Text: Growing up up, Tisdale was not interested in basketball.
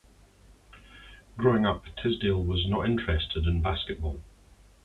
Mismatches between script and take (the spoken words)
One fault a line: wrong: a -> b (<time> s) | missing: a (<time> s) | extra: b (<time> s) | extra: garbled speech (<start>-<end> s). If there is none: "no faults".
missing: up (1.8 s)